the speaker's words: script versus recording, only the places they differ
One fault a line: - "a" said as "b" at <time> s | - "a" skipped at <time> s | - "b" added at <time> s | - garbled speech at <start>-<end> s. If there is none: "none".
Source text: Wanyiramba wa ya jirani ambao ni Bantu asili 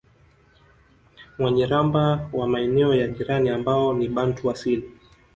- "maeneo" added at 2.5 s